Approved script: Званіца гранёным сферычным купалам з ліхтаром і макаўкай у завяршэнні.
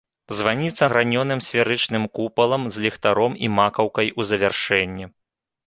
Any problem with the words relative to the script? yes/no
no